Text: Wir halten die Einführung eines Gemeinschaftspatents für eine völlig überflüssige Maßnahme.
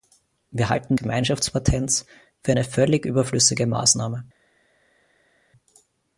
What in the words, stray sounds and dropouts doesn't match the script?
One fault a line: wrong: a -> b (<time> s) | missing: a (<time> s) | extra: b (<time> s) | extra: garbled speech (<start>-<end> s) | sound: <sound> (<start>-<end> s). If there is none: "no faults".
missing: die Einführung eines (1.0 s)